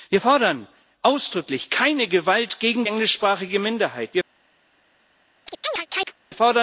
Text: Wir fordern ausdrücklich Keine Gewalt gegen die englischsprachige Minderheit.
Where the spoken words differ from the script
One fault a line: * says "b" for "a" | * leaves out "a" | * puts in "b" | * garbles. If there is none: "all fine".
* leaves out "die"